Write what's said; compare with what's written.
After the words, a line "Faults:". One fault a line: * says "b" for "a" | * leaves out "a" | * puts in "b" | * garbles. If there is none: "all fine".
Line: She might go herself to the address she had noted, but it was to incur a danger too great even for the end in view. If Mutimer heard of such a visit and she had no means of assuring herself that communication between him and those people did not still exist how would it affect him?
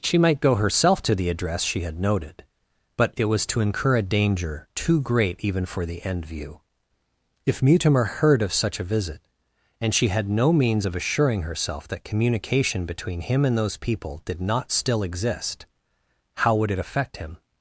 She might go herself to the address she had noted, but it was to incur a danger too great even for the end view. If Mutimer heard of such a visit and she had no means of assuring herself that communication between him and those people did not still exist how would it affect him?
Faults:
* leaves out "in"